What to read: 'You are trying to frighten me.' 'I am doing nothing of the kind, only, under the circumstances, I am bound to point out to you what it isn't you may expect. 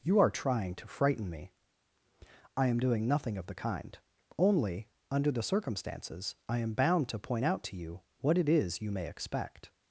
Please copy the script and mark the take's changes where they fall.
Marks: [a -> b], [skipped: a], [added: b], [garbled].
'You are trying to frighten me.' 'I am doing nothing of the kind, only, under the circumstances, I am bound to point out to you what it [isn't -> is] you may expect.